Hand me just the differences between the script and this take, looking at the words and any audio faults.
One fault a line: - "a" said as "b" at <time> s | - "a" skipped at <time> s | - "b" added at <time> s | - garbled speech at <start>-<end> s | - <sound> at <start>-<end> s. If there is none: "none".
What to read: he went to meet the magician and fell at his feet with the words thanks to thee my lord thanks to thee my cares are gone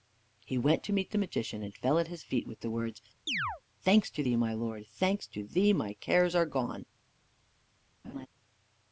- chirp at 3.3-3.6 s
- laugh at 8.0-8.3 s